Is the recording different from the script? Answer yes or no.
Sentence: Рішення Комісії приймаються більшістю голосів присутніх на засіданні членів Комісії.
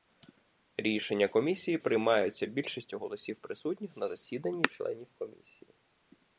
no